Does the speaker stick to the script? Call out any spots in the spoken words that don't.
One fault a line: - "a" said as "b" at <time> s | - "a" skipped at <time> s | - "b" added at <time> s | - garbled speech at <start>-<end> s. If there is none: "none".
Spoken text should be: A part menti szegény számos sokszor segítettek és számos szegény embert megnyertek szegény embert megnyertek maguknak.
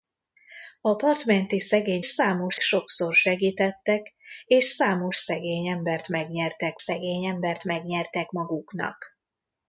none